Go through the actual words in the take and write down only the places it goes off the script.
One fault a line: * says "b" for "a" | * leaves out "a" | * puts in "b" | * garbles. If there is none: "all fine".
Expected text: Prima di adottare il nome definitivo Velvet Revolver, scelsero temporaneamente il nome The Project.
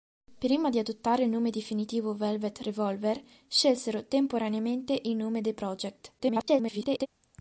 * garbles